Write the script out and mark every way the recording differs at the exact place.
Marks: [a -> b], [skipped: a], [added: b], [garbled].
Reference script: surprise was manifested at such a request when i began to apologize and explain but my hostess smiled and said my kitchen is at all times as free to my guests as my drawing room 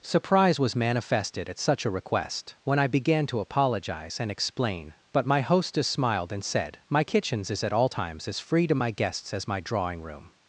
surprise was manifested at such a request when i began to apologize and explain but my hostess smiled and said my [kitchen -> kitchens] is at all times as free to my guests as my drawing room